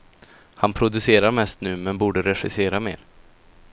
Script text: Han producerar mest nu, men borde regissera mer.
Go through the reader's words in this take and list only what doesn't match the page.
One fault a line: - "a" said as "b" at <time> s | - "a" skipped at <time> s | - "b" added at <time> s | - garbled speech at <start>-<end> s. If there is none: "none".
none